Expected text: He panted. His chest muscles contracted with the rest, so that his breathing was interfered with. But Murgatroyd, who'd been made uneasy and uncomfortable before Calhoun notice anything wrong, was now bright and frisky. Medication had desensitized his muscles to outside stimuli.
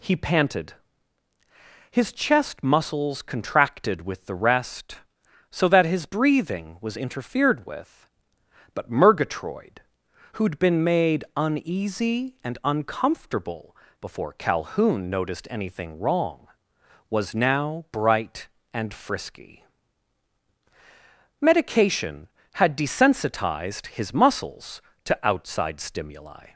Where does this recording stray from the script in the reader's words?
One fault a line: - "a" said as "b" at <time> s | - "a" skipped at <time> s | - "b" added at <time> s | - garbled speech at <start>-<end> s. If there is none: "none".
- "notice" said as "noticed" at 15.1 s